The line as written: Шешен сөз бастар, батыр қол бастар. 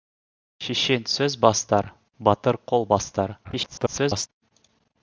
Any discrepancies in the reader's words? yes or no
yes